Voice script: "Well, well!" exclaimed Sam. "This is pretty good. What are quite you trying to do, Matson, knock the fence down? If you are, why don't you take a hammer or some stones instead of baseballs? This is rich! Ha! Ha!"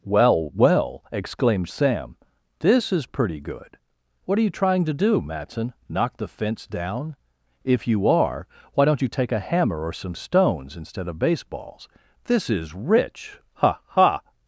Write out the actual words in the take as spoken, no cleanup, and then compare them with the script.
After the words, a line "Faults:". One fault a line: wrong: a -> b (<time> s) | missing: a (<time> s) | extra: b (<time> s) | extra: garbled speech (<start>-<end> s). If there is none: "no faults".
"Well, well!" exclaimed Sam. "This is pretty good. What are you trying to do, Matson, knock the fence down? If you are, why don't you take a hammer or some stones instead of baseballs? This is rich! Ha! Ha!"
Faults:
missing: quite (4.4 s)